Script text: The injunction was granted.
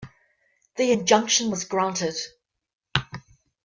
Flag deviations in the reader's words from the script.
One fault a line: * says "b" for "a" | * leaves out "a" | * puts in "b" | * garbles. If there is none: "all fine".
all fine